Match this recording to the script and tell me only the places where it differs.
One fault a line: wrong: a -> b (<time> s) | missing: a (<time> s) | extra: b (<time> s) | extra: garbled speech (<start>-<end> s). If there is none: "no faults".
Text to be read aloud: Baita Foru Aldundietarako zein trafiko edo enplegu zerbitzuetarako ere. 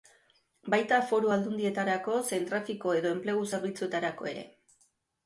no faults